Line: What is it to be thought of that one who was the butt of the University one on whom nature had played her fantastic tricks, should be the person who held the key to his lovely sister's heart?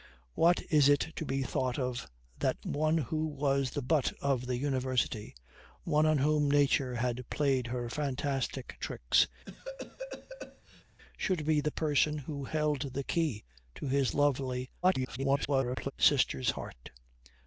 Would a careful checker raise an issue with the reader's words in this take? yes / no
yes